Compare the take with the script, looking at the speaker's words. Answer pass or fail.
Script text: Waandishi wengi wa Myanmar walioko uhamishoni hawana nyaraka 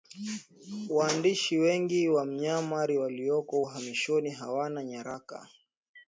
pass